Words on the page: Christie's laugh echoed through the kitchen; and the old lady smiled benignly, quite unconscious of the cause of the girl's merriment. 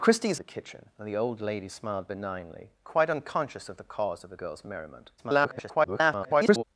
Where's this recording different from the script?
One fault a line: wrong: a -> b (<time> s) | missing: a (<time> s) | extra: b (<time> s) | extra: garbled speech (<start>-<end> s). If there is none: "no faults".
missing: laugh echoed through (0.4 s)
extra: garbled speech (5.2-6.6 s)